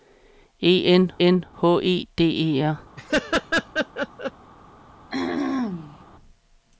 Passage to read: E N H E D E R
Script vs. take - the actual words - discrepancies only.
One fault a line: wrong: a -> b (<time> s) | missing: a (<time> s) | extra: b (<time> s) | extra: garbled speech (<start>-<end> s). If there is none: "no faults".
extra: N (1.3 s)